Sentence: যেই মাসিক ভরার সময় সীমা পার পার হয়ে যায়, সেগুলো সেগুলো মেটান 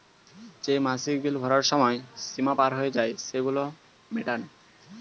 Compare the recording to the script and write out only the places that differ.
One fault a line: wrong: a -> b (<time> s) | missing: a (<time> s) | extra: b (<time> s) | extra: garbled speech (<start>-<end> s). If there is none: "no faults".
extra: বিল (1.2 s)
missing: পার (2.7 s)
missing: সেগুলো (3.6 s)